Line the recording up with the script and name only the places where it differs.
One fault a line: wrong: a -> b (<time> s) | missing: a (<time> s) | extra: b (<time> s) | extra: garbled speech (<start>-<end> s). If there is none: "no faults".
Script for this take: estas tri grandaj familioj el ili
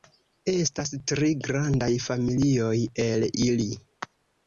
no faults